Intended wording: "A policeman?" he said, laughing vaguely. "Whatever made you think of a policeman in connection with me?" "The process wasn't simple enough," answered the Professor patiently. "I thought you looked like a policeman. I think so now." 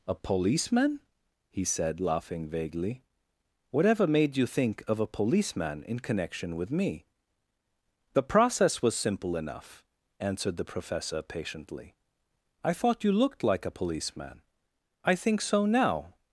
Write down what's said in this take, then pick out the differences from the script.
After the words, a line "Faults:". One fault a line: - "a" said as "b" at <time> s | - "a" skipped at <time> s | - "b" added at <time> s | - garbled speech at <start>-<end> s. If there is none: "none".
"A policeman?" he said, laughing vaguely. "Whatever made you think of a policeman in connection with me?" "The process was simple enough," answered the Professor patiently. "I thought you looked like a policeman. I think so now."
Faults:
- "wasn't" said as "was" at 8.8 s